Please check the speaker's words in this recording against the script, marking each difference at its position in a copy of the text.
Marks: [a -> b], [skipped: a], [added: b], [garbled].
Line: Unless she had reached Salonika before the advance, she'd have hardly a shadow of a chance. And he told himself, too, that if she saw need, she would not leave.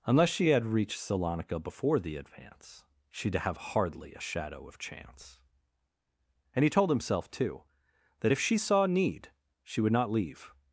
Unless she had reached Salonika before the advance, she'd have hardly a shadow of [skipped: a] chance. And he told himself, too, that if she saw need, she would not leave.